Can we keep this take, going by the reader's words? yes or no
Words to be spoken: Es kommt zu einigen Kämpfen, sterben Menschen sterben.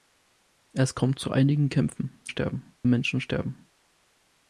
yes